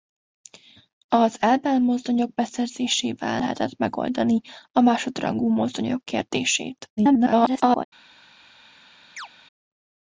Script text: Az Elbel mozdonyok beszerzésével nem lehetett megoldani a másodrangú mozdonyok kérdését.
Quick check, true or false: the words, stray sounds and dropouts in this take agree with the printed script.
false